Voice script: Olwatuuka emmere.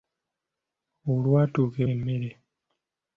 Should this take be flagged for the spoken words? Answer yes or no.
no